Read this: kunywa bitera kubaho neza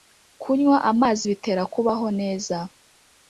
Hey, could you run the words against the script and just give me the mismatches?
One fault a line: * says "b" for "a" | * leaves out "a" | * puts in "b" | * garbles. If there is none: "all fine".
* puts in "amazi"